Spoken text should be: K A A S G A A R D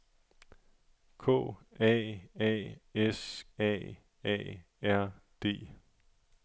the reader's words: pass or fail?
fail